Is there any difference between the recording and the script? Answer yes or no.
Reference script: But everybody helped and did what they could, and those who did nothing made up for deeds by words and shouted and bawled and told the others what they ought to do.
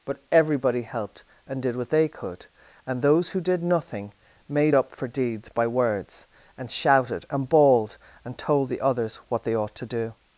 no